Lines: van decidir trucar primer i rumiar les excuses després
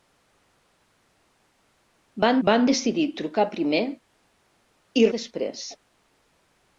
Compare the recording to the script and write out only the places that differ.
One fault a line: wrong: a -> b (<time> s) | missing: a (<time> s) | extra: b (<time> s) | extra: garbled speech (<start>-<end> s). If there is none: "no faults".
extra: van (2.5 s)
missing: rumiar les excuses (5.1 s)